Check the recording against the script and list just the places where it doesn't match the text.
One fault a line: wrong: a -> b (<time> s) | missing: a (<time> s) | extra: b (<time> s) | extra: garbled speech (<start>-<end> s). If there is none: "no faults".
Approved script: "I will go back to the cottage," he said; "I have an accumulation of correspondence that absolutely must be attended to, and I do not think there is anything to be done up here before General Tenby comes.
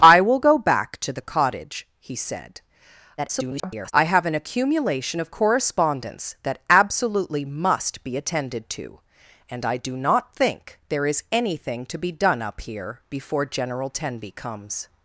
extra: garbled speech (3.2-3.9 s)